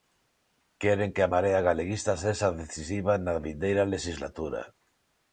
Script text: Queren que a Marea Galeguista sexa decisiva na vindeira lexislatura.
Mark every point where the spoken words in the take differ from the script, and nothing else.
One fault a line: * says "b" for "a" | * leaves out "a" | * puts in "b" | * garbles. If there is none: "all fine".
all fine